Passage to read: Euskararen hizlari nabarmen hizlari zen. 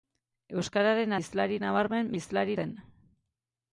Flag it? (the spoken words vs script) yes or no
no